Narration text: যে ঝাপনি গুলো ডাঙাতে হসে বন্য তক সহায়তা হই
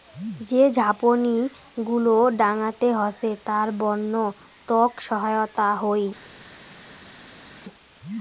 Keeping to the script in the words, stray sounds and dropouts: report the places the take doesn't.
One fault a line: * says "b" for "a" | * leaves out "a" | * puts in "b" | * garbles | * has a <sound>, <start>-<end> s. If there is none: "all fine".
* puts in "তার"